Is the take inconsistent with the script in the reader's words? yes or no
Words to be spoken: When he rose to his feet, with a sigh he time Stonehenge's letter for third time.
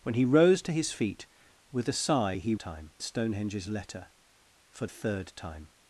no